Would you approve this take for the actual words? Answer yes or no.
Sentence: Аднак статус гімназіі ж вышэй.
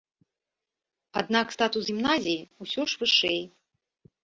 no